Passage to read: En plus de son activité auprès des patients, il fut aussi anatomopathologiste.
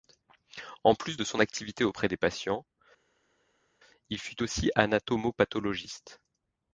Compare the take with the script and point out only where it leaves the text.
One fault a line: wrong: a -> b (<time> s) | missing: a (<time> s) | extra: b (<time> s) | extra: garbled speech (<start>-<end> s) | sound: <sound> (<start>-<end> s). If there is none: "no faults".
no faults